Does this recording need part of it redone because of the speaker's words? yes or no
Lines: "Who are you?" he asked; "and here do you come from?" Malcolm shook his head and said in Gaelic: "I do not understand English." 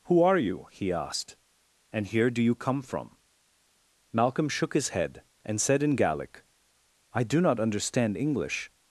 no